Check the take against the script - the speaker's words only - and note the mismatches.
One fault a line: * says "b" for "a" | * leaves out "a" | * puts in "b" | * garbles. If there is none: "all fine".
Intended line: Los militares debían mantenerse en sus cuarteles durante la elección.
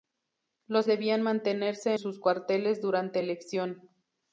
* leaves out "militares"
* leaves out "en"
* leaves out "la"